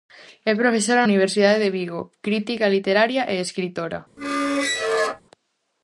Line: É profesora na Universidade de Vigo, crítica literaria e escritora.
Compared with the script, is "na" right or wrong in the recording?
wrong